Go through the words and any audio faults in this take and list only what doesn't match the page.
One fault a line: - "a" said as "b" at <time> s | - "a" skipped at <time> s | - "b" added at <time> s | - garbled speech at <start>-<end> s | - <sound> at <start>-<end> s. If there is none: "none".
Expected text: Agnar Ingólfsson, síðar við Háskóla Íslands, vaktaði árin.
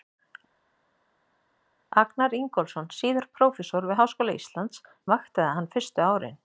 - "prófessor" added at 3.4 s
- "hann fyrstu" added at 5.6 s